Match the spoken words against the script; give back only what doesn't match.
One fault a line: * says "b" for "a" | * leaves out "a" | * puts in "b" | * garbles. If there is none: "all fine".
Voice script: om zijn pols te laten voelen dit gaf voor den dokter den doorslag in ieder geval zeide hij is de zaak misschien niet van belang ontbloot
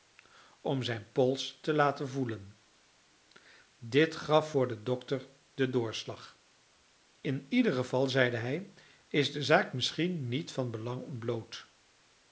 all fine